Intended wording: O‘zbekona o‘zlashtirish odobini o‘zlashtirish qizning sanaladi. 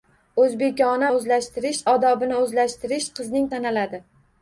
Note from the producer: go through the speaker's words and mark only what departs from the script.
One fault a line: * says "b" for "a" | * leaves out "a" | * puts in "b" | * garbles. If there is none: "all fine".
all fine